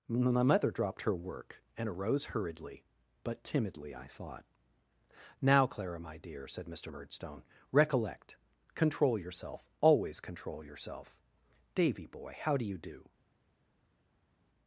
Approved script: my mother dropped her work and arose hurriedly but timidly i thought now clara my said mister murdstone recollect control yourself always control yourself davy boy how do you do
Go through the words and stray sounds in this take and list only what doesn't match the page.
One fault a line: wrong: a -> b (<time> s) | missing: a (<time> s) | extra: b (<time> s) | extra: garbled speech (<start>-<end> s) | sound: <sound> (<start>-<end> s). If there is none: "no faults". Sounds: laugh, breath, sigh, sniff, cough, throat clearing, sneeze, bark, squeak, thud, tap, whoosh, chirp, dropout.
extra: dear (6.2 s)